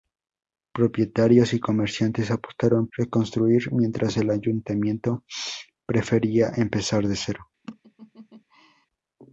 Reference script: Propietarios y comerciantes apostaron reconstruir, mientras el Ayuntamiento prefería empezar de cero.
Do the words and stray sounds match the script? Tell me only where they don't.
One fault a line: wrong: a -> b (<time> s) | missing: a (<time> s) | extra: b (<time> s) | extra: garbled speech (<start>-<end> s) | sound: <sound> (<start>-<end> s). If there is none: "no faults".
sound: laugh (7.6-8.9 s)